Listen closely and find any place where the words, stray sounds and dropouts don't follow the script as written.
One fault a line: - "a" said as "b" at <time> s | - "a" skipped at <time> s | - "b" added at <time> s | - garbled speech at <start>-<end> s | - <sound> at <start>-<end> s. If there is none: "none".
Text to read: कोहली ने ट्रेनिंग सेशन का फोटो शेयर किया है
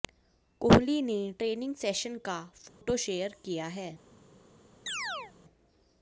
- dropout at 2.7-2.8 s
- chirp at 4.9-5.3 s